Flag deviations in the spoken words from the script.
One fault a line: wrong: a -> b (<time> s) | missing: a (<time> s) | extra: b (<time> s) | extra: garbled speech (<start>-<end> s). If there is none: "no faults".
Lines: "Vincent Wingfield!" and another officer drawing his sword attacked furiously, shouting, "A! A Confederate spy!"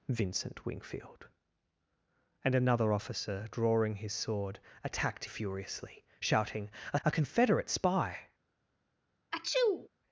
no faults